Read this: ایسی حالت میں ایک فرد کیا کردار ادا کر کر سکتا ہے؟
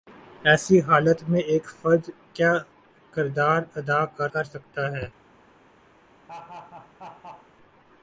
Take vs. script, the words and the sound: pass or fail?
fail